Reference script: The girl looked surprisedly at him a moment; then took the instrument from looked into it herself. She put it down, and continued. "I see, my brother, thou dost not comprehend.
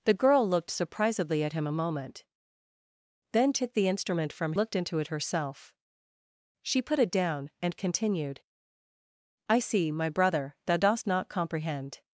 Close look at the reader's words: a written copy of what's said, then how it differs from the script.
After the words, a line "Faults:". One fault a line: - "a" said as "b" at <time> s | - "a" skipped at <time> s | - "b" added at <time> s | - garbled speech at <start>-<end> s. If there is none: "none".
The girl looked surprisedly at him a moment; then took the instrument from looked into it herself. She put it down, and continued. "I see, my brother, thou dost not comprehend.
Faults:
none